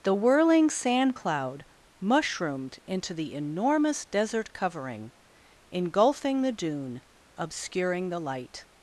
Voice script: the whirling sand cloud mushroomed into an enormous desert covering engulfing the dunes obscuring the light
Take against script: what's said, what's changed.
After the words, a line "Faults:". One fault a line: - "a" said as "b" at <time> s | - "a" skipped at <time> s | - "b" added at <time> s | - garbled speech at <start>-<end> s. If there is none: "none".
the whirling sand cloud mushroomed into the enormous desert covering engulfing the dune obscuring the light
Faults:
- "an" said as "the" at 3.1 s
- "dunes" said as "dune" at 6.5 s